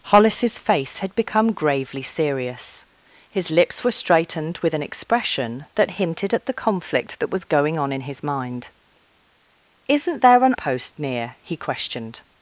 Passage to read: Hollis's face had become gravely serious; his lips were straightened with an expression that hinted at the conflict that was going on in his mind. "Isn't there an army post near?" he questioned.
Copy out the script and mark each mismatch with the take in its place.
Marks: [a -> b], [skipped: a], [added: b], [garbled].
Hollis's face had become gravely serious; his lips were straightened with an expression that hinted at the conflict that was going on in his mind. "Isn't there an [skipped: army] post near?" he questioned.